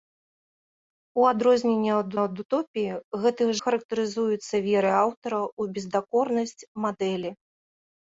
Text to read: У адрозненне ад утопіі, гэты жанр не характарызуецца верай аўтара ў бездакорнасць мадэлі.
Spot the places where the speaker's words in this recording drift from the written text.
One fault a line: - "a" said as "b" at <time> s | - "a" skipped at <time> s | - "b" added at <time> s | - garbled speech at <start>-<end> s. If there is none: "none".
- "ад" added at 2.2 s
- "жанр не" skipped at 3.4 s